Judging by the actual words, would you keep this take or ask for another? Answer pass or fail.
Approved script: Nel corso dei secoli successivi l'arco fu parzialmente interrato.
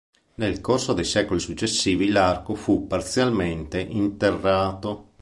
pass